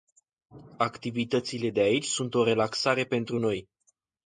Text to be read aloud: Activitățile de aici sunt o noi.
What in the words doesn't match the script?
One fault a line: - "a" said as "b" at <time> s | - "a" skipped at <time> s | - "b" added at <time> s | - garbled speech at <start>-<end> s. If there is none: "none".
- "relaxare pentru" added at 2.4 s